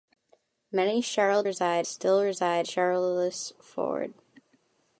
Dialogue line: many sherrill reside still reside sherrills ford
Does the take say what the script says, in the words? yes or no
yes